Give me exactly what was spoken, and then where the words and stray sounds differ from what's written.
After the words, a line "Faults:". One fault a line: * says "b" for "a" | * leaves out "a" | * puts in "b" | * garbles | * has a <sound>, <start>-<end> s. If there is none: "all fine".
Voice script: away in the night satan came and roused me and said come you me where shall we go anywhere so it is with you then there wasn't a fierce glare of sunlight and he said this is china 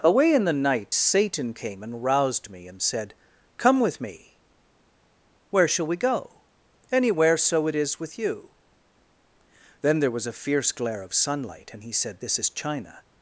away in the night satan came and roused me and said come with me where shall we go anywhere so it is with you then there was a fierce glare of sunlight and he said this is china
Faults:
* says "with" for "you"
* says "was" for "wasn't"